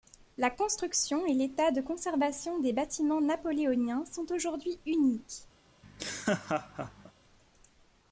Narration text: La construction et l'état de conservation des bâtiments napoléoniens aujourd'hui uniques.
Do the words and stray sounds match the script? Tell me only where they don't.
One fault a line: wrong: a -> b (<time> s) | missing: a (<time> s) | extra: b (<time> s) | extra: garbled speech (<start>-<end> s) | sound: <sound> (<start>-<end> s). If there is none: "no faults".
extra: sont (4.1 s)
sound: laugh (5.8-7.1 s)